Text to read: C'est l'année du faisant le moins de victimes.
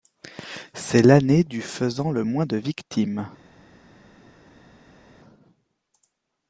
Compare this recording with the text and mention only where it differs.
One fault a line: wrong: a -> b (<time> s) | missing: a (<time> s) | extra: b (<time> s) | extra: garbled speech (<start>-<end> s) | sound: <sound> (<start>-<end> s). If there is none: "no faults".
no faults